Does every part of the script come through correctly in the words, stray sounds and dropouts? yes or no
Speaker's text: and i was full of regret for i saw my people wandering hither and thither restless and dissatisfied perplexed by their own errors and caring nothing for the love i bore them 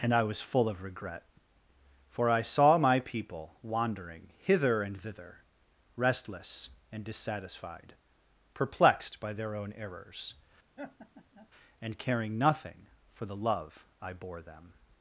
no